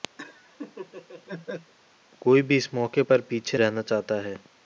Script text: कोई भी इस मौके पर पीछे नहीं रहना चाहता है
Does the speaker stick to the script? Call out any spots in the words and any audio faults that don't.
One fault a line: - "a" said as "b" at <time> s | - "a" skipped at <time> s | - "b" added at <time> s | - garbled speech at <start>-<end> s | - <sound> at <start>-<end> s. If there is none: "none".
- laugh at 0.2-1.7 s
- "नहीं" skipped at 3.6 s